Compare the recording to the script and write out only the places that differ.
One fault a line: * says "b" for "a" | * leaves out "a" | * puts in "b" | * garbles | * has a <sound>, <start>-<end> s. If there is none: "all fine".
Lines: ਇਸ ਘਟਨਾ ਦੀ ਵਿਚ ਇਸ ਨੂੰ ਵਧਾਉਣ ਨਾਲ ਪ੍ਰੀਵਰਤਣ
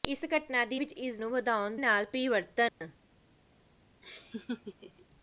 * has a dropout, 2.7-2.8 s
* has a laugh, 4.0-5.1 s